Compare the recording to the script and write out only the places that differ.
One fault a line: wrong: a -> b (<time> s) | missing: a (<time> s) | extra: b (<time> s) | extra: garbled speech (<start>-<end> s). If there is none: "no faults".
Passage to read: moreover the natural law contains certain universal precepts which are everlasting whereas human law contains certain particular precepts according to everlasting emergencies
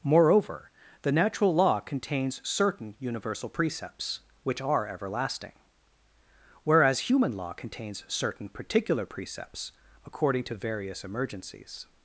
wrong: everlasting -> various (10.6 s)